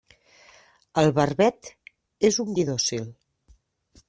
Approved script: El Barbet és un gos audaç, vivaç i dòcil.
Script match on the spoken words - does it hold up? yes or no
no